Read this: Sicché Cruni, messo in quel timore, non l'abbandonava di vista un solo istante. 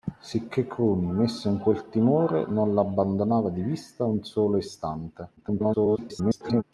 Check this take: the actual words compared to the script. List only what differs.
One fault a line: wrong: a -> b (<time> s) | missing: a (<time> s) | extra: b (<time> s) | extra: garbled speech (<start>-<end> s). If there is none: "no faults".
extra: garbled speech (5.4-6.6 s)